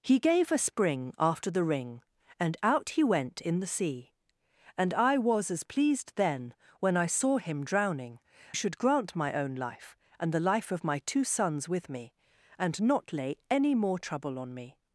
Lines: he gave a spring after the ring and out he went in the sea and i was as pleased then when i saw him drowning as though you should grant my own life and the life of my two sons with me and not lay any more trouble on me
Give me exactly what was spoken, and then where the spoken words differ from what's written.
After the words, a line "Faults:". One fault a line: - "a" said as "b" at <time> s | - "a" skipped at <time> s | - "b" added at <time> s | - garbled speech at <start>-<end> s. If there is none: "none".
he gave a spring after the ring and out he went in the sea and i was as pleased then when i saw him drowning should grant my own life and the life of my two sons with me and not lay any more trouble on me
Faults:
- "as though you" skipped at 8.2 s